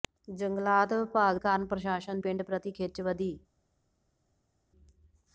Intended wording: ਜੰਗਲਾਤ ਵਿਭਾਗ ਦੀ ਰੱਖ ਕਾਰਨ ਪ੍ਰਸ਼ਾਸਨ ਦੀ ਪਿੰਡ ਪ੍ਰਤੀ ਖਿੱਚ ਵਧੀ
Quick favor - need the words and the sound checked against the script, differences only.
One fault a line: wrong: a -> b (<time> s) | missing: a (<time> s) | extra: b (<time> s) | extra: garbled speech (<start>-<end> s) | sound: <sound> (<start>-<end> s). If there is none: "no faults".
missing: ਦੀ ਰੱਖ (1.4 s)
missing: ਦੀ (2.2 s)